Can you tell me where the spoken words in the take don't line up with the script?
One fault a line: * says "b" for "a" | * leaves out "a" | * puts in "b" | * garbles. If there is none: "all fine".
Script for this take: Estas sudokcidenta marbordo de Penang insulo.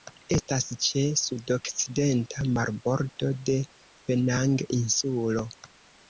* puts in "ĉe"